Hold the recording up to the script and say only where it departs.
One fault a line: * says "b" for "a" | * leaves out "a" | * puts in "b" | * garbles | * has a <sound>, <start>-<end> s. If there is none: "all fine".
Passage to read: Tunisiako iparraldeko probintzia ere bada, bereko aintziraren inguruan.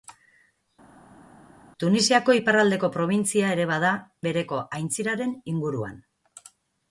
all fine